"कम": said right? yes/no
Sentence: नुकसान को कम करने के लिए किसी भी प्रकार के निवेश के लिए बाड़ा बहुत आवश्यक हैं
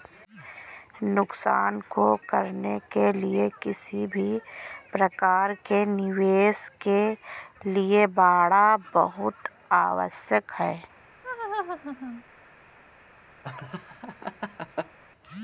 no